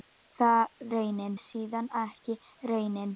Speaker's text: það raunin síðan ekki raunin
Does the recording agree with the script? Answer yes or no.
yes